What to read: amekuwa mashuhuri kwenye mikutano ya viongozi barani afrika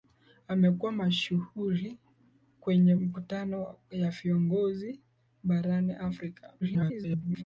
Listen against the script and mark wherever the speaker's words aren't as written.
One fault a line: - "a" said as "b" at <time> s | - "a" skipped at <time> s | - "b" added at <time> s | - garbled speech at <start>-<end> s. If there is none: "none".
- garbled speech at 6.6-7.4 s